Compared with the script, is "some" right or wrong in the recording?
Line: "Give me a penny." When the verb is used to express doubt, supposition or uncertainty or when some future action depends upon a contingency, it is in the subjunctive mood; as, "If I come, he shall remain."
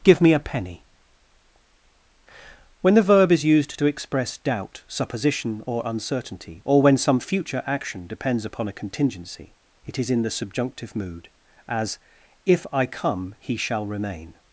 right